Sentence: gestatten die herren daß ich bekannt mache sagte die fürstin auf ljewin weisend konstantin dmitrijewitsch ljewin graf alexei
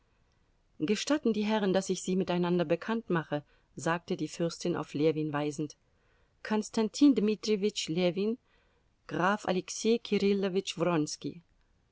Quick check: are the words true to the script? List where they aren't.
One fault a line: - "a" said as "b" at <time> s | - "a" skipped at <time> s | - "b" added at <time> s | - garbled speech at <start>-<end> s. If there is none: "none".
- "sie miteinander" added at 2.0 s